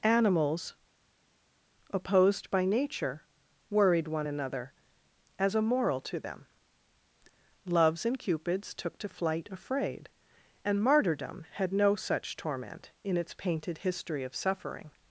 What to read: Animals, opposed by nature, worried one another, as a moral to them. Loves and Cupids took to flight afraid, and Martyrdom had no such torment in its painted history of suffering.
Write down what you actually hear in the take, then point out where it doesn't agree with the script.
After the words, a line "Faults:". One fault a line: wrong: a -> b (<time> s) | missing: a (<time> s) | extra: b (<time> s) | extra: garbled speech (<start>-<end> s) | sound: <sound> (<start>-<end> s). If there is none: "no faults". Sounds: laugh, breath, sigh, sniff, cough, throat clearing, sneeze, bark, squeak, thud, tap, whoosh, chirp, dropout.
Animals, opposed by nature, worried one another, as a moral to them. Loves and Cupids took to flight afraid, and Martyrdom had no such torment in its painted history of suffering.
Faults:
no faults